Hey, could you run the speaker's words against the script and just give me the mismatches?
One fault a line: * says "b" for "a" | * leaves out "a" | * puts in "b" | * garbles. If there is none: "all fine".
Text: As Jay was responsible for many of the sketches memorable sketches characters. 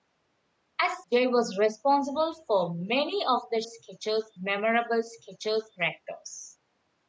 all fine